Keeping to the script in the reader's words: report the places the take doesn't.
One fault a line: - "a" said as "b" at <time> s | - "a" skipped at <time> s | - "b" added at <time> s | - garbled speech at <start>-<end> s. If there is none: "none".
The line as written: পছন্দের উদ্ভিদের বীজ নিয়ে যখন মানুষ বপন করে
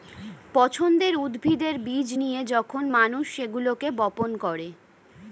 - "সেগুলোকে" added at 3.4 s